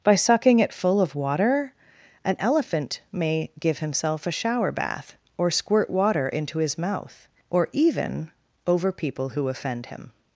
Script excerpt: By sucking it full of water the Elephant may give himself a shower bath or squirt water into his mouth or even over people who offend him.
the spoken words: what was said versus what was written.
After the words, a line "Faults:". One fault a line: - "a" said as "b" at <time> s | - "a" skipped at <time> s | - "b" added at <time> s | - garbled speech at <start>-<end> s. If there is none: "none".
By sucking it full of water an Elephant may give himself a shower bath or squirt water into his mouth or even over people who offend him.
Faults:
- "the" said as "an" at 2.2 s